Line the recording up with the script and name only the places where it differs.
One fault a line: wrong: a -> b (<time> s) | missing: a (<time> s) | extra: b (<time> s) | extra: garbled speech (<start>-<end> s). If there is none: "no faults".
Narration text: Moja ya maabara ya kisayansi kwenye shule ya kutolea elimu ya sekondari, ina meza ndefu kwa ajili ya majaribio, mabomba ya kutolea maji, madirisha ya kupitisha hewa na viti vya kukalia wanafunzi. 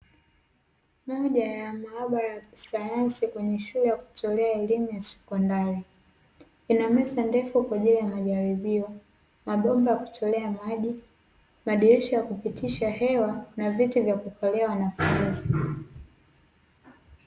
no faults